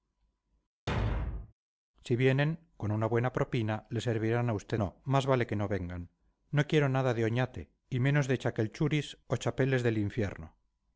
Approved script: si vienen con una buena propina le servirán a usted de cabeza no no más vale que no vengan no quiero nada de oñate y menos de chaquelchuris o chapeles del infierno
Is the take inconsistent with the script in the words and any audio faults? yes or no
yes